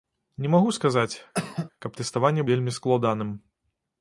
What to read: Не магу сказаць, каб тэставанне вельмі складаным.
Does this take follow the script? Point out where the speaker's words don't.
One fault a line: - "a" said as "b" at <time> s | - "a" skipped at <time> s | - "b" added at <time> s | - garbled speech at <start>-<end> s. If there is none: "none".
none